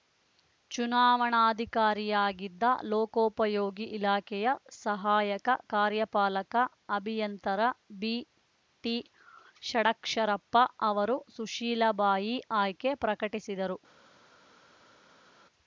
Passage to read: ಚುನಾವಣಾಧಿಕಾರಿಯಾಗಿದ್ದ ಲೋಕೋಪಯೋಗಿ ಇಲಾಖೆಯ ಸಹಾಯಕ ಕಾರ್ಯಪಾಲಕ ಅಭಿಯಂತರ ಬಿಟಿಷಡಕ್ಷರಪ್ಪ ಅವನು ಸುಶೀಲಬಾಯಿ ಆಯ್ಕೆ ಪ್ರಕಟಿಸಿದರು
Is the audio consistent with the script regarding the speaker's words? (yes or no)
no